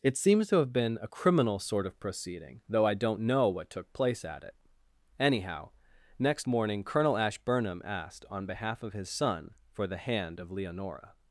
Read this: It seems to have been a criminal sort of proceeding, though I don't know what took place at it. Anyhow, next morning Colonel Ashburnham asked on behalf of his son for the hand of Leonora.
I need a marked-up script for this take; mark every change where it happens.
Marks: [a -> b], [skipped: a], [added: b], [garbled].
It seems to have been a criminal sort of proceeding, though I don't know what took place at it. Anyhow, next morning Colonel Ashburnham asked on behalf of his son for the hand of Leonora.